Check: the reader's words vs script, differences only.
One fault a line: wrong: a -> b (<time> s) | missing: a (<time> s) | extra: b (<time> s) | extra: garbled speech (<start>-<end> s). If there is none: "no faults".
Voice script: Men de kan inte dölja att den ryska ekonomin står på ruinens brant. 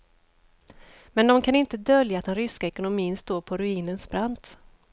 no faults